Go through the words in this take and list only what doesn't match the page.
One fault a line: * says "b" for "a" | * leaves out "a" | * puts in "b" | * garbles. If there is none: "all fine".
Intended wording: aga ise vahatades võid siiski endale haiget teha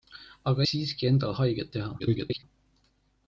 * leaves out "ise vahatades võid"
* garbles